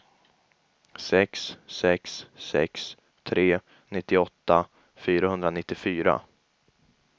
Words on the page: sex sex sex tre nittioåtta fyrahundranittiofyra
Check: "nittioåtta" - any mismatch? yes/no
no